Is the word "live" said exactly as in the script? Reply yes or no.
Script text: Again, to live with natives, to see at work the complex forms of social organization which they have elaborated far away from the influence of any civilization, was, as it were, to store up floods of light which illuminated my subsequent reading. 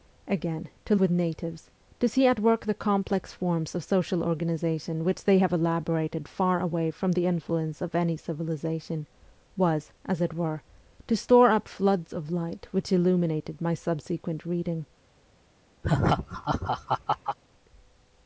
no